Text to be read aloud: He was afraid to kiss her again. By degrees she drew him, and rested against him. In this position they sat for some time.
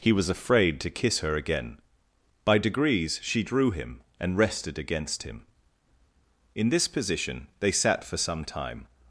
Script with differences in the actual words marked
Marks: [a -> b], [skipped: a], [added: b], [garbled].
He was afraid to kiss her again. By degrees she drew him, and rested against him. In this position they sat for some time.